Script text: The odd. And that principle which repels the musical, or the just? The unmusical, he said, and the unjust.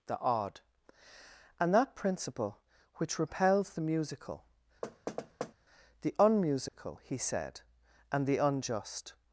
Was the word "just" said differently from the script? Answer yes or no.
yes